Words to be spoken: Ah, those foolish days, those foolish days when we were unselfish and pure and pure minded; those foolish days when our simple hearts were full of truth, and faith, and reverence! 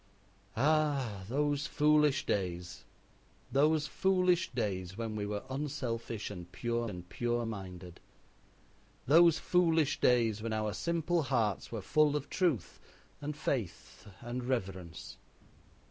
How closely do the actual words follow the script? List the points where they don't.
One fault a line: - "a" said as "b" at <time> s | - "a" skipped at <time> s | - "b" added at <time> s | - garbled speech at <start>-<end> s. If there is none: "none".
none